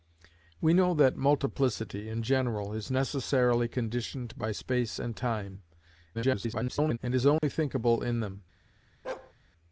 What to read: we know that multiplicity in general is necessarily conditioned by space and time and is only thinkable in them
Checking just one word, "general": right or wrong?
right